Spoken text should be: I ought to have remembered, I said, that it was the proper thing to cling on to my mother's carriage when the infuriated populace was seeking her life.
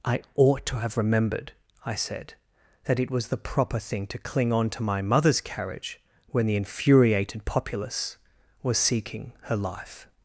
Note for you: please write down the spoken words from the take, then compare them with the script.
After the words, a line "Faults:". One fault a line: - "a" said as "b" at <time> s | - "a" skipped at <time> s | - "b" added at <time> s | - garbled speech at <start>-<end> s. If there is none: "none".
I ought to have remembered, I said, that it was the proper thing to cling on to my mother's carriage when the infuriated populace was seeking her life.
Faults:
none